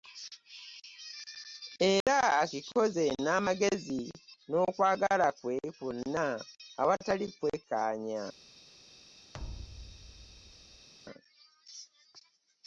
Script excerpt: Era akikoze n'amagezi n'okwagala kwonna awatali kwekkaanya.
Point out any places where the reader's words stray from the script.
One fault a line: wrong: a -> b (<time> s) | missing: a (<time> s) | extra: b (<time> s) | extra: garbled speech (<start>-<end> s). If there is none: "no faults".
extra: kwe (5.4 s)